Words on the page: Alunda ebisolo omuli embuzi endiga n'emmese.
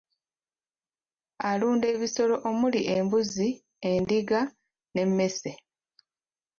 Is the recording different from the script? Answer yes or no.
no